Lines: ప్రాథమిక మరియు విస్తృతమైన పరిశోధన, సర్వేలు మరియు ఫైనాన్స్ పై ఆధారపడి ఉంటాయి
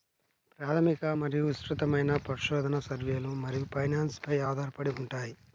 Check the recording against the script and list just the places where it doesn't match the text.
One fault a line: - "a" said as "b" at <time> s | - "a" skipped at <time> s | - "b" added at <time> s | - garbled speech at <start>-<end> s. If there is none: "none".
none